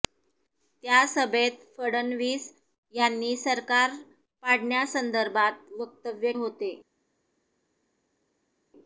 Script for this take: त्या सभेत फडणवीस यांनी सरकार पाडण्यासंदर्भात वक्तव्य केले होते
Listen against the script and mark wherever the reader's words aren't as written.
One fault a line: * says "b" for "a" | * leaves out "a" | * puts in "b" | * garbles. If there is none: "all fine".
* leaves out "केले"